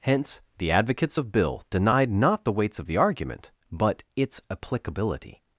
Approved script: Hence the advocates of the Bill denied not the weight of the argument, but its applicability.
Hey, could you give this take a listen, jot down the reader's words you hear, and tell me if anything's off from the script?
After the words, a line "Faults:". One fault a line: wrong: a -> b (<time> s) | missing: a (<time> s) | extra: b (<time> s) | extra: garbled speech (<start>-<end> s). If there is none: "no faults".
Hence the advocates of Bill denied not the weights of the argument, but its applicability.
Faults:
missing: the (1.3 s)
wrong: weight -> weights (2.5 s)